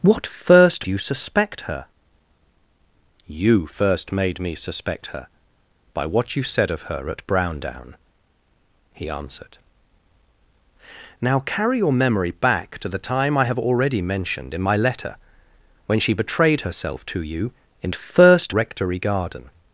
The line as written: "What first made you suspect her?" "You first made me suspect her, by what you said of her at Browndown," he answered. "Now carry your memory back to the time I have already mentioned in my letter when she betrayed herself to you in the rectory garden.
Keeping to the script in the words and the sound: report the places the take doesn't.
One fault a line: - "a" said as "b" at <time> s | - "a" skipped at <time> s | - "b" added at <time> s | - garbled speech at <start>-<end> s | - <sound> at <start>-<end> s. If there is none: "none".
- "made" skipped at 0.9 s
- "the" said as "first" at 17.9 s